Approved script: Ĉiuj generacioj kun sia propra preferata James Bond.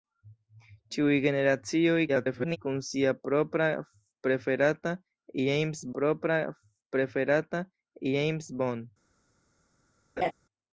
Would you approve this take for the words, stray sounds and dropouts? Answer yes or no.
no